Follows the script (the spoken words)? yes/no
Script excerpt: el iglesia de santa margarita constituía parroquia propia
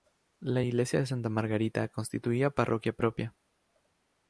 no